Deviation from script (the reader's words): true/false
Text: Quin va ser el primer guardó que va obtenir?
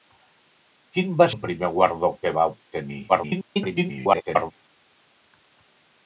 true